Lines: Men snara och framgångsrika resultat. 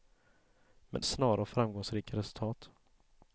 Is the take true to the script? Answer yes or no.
yes